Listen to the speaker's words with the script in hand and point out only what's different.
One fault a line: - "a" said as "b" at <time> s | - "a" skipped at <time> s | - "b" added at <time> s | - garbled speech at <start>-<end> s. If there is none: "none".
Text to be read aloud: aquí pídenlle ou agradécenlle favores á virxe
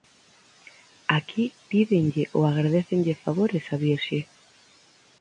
none